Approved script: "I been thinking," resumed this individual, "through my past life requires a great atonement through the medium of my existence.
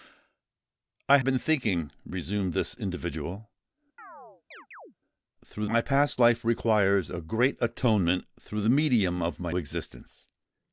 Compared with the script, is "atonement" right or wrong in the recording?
right